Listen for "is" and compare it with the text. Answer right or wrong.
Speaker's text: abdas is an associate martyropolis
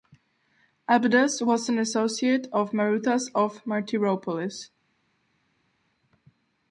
wrong